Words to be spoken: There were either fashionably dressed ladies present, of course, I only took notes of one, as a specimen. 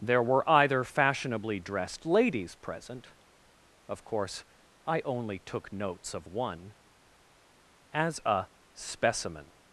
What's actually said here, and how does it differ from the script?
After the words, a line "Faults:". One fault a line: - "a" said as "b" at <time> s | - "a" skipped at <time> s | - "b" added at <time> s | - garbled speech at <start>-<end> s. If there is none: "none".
There were either fashionably dressed ladies present, of course, I only took notes of one, as a specimen.
Faults:
none